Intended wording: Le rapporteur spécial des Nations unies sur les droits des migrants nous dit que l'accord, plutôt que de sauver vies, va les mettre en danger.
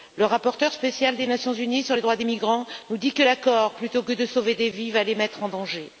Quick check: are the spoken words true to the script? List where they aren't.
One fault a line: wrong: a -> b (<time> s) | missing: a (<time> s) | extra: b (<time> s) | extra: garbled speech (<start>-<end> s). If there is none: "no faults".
extra: des (4.6 s)